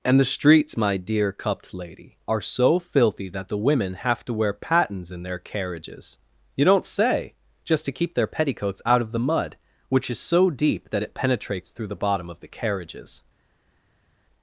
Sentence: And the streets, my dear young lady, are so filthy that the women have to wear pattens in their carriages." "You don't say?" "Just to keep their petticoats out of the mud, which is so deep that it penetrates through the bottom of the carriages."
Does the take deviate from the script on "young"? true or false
true